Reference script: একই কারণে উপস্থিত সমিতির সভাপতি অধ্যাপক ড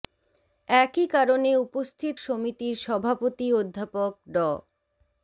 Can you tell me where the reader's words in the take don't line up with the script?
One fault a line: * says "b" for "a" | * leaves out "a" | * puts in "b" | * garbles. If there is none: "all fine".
all fine